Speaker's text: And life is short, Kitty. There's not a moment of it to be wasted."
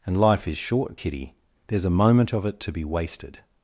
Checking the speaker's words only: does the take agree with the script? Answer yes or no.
no